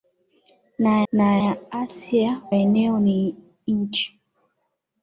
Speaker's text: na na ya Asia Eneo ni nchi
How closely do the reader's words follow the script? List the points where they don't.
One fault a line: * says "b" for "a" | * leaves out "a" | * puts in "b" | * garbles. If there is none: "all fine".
all fine